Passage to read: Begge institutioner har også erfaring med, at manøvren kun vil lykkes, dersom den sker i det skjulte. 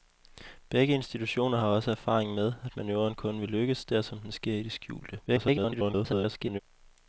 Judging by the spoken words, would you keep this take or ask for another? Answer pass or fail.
fail